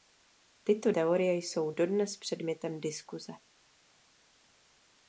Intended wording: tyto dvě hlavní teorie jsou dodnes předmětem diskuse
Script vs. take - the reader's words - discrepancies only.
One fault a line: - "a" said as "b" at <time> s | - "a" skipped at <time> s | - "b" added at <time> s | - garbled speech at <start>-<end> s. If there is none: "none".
- "dvě hlavní" skipped at 0.9 s